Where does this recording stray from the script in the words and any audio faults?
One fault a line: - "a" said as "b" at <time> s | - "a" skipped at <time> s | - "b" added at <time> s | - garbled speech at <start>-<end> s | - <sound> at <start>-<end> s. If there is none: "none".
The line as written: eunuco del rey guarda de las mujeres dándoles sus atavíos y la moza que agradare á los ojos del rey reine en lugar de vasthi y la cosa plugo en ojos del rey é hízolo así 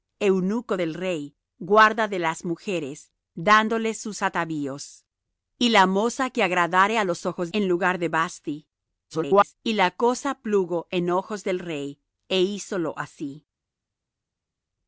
- "del rey reine" skipped at 7.5 s
- garbled speech at 9.1-9.5 s